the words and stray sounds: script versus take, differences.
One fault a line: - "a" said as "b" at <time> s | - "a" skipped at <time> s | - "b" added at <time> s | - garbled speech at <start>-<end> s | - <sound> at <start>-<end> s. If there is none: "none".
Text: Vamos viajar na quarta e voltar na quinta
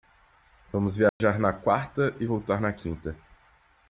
- dropout at 1.1-1.2 s